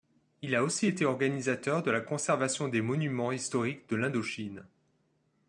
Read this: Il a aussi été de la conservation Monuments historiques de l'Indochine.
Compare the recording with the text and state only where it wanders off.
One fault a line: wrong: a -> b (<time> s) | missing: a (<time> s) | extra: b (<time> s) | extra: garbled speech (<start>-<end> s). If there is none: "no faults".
extra: organisateur (1.0 s)
extra: des (2.7 s)